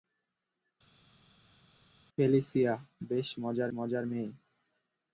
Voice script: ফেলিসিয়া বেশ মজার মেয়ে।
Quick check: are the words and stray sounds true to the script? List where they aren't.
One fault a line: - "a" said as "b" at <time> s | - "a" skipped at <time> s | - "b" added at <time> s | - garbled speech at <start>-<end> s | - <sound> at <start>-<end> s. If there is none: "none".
- "মজার" added at 3.8 s